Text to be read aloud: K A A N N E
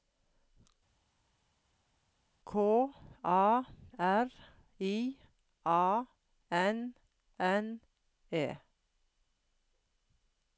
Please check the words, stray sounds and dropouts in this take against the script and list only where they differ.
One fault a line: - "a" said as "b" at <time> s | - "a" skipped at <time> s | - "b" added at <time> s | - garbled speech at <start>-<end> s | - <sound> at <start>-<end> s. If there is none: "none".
- "R I" added at 3.7 s